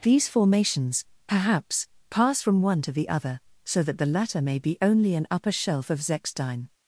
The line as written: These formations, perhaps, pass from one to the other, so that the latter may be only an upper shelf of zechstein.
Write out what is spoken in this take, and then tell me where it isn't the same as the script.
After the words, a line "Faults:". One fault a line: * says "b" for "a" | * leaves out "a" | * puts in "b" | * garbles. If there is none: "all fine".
These formations, perhaps, pass from one to the other, so that the latter may be only an upper shelf of zechstein.
Faults:
all fine